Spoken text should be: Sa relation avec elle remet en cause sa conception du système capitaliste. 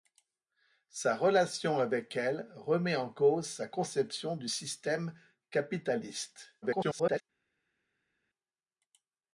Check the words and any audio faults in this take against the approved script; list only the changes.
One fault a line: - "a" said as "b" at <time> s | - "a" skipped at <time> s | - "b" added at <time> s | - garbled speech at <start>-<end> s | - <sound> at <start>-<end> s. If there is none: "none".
- garbled speech at 6.6-7.2 s